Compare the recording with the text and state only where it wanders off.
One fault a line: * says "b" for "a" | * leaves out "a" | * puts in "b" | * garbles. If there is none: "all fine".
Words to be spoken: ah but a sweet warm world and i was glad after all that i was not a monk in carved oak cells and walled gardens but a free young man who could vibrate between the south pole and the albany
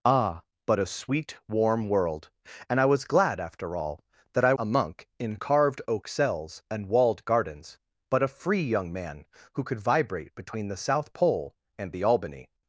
* leaves out "was not"